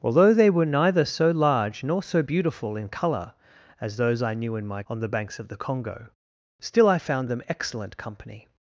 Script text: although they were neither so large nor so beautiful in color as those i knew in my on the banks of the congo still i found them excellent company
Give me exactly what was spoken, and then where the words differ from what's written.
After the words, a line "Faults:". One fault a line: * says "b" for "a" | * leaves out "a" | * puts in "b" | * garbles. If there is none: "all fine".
although they were neither so large nor so beautiful in color as those i knew in my on the banks of the congo still i found them excellent company
Faults:
all fine